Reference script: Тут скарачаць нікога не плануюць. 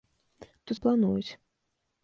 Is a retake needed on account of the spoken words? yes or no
yes